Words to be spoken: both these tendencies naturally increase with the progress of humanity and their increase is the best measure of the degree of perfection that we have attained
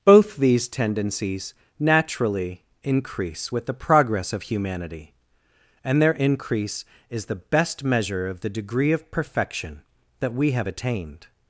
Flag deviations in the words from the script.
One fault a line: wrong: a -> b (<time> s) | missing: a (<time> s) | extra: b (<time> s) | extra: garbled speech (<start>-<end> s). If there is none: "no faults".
no faults